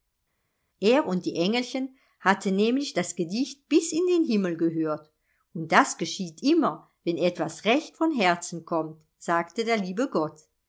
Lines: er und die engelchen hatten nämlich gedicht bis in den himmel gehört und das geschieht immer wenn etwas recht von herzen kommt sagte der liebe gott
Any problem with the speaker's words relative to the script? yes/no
yes